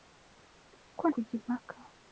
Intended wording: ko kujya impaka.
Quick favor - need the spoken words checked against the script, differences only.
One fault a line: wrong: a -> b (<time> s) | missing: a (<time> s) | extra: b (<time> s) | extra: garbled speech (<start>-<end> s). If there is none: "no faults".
no faults